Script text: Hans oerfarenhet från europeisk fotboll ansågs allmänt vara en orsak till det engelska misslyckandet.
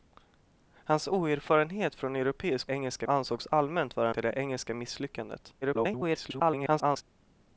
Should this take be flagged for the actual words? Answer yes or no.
yes